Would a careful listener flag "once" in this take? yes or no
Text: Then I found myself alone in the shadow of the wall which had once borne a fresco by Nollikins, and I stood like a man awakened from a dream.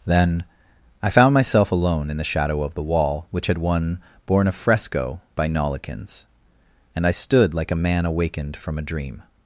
yes